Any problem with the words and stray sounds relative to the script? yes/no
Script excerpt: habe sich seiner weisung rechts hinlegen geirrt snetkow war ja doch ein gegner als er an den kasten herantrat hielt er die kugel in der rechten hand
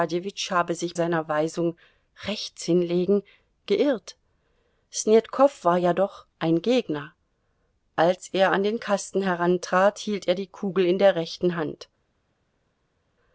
no